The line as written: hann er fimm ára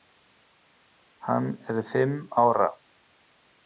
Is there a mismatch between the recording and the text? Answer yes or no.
no